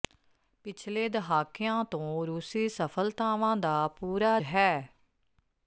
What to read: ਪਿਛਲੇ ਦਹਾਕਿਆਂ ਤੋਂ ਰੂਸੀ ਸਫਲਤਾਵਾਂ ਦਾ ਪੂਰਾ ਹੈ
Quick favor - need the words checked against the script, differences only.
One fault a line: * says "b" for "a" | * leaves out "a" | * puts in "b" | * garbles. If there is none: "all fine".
all fine